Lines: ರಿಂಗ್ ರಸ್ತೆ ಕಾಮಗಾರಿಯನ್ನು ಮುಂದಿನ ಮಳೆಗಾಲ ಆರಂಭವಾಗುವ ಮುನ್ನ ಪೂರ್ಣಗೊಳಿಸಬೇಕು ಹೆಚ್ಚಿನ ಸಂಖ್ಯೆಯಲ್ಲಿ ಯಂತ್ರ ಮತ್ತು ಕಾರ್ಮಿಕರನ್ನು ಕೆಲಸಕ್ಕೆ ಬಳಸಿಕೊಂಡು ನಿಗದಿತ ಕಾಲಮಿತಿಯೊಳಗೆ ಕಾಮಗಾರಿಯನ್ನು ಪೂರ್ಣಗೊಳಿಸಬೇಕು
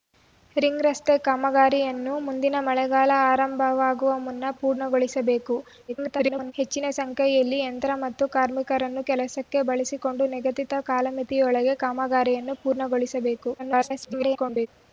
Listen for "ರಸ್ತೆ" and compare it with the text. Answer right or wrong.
right